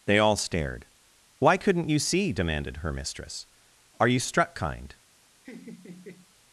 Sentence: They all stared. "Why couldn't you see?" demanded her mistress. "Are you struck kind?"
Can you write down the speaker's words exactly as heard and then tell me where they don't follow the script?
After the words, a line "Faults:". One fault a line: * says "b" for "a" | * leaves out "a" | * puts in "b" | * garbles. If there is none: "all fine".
They all stared. "Why couldn't you see?" demanded her mistress. "Are you struck kind?"
Faults:
all fine